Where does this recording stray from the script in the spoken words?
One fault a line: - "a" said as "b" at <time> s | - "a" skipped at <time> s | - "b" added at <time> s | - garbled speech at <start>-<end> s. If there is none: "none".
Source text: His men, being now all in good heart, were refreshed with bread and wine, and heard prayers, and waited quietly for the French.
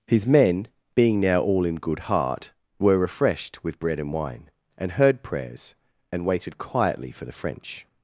none